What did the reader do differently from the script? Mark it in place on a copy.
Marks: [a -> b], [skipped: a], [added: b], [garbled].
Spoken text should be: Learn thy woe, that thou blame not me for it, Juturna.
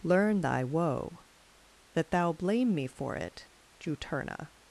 Learn thy woe, that thou blame [skipped: not] me for it, Juturna.